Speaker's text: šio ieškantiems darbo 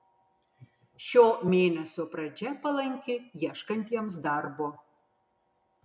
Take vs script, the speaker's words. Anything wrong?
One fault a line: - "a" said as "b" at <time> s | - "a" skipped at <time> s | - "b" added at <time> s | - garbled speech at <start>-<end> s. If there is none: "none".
- "mėnesio pradžia palanki" added at 1.5 s